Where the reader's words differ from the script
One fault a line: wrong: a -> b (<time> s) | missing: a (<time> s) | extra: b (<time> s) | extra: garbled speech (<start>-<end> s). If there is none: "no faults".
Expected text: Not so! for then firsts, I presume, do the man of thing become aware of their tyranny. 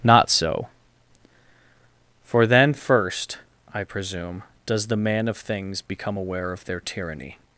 wrong: firsts -> first (2.7 s)
wrong: do -> does (4.7 s)
wrong: thing -> things (5.3 s)